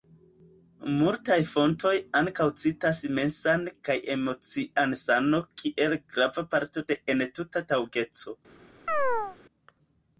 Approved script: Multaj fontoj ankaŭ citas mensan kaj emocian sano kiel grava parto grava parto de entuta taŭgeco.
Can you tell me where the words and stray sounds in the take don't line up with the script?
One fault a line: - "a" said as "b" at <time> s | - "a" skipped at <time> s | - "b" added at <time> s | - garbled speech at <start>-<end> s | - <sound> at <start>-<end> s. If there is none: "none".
- "grava parto" skipped at 6.9 s
- chirp at 8.9-9.4 s